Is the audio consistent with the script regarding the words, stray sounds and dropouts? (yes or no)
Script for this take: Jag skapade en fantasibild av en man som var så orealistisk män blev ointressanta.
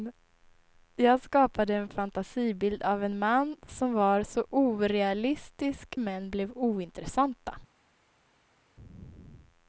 yes